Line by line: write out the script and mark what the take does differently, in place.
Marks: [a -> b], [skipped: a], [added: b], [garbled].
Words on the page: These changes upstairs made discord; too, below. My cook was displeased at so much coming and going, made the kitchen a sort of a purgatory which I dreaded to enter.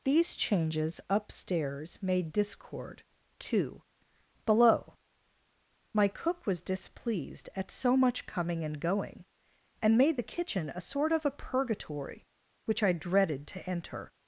These changes upstairs made discord; too, below. My cook was displeased at so much coming and going, [added: and] made the kitchen a sort of a purgatory which I dreaded to enter.